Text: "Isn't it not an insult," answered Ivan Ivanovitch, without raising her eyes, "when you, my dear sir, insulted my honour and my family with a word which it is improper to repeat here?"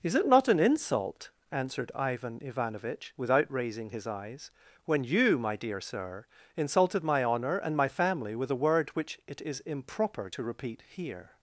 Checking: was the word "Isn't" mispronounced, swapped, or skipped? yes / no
yes